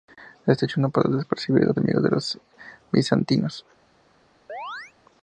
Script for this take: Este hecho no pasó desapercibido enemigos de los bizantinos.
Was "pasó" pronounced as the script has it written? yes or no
yes